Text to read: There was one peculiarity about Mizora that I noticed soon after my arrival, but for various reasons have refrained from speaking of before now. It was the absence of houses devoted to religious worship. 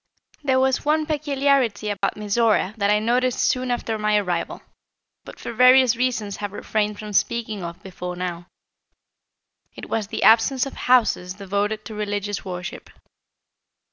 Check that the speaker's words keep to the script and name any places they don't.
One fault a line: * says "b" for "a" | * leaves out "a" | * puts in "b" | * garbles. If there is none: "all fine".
all fine